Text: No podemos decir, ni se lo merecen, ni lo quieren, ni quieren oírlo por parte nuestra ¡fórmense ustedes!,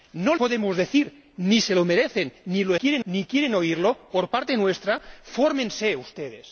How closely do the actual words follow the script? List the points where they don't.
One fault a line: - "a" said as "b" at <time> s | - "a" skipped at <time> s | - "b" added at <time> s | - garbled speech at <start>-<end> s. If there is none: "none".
none